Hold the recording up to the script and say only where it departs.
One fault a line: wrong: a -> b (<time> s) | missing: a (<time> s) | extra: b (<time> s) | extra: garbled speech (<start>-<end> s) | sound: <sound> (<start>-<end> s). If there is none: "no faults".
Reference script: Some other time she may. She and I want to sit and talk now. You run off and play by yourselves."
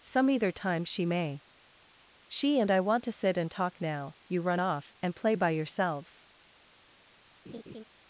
wrong: other -> either (0.3 s)
sound: laugh (7.5-7.8 s)